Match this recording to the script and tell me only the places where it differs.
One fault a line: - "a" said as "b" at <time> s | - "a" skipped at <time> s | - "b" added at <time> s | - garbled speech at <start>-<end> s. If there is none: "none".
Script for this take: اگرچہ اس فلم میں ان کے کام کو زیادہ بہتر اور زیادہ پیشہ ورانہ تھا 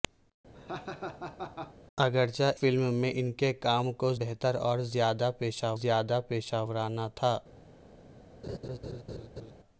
- "اس" skipped at 2.5 s
- "زیادہ" skipped at 4.1 s
- "زیادہ پیشہ" added at 5.8 s